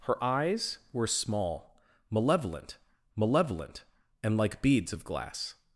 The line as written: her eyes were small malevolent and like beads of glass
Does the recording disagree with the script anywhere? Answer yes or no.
yes